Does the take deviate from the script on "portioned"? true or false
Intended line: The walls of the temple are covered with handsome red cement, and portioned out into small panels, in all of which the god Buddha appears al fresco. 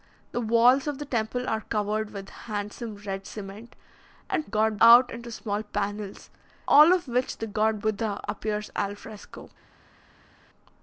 true